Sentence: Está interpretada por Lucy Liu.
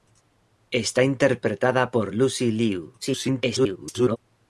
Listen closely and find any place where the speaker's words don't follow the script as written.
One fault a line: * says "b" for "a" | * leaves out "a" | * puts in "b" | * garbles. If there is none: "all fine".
* garbles